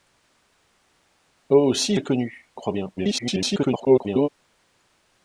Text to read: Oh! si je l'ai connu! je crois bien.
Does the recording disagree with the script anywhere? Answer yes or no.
yes